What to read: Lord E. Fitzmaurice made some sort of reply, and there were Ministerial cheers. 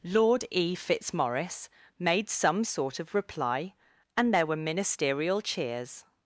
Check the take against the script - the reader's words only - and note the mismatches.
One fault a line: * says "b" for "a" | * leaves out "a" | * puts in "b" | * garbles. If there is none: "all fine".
all fine